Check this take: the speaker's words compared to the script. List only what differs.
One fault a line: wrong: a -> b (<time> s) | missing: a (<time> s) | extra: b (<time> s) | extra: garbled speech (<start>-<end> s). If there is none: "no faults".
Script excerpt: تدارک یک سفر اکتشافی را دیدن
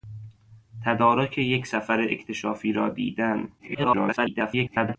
extra: garbled speech (3.6-5.0 s)